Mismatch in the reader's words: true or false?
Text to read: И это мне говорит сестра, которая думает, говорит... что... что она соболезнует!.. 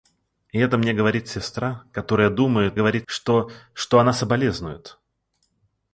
false